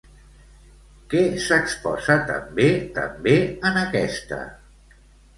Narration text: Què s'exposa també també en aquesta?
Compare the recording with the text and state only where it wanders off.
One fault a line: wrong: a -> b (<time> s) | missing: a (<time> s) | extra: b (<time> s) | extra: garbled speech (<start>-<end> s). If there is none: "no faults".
no faults